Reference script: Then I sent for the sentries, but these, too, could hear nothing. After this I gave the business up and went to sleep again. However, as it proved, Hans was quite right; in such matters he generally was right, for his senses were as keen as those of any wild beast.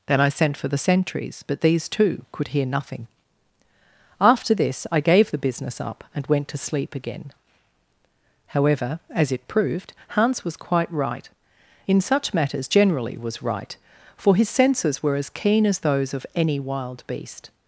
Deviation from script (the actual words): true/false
true